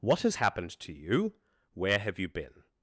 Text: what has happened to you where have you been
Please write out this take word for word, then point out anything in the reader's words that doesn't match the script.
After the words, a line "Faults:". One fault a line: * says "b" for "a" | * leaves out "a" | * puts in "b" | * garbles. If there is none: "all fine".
what has happened to you where have you been
Faults:
all fine